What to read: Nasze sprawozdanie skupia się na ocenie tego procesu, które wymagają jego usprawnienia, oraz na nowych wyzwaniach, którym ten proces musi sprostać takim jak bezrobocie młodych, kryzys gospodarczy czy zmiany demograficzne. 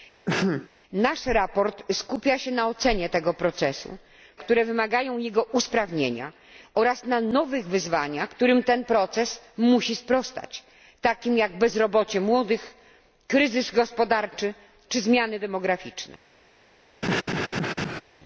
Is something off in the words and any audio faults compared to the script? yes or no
yes